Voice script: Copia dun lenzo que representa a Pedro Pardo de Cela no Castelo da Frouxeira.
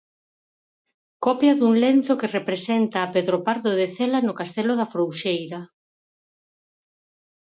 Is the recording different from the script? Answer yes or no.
no